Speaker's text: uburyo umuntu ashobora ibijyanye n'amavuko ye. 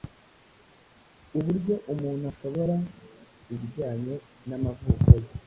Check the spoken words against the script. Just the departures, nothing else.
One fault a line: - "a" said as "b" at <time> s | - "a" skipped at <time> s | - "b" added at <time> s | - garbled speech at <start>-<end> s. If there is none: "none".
none